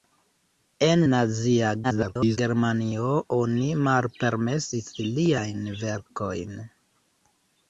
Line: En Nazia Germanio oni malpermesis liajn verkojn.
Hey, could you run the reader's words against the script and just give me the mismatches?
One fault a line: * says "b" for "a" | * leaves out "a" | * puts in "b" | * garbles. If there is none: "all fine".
* garbles